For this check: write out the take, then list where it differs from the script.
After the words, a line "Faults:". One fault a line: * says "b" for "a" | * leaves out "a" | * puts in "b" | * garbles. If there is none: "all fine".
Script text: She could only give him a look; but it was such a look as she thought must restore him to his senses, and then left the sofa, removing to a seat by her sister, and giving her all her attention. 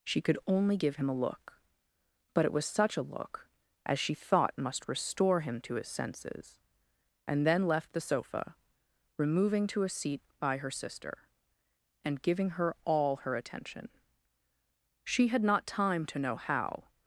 She could only give him a look; but it was such a look as she thought must restore him to his senses, and then left the sofa, removing to a seat by her sister, and giving her all her attention. She had not time to know how
Faults:
* puts in "She had not time to know how"